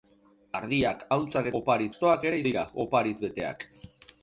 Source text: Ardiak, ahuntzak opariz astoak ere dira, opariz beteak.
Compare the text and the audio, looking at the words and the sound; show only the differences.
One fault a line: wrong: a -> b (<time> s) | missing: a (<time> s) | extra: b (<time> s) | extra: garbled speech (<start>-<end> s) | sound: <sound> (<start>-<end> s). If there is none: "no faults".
no faults